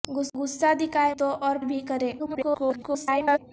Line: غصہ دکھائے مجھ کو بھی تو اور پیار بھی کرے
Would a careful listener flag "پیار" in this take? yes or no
yes